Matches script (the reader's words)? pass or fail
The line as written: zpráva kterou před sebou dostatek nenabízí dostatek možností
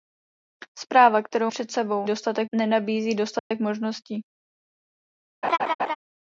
pass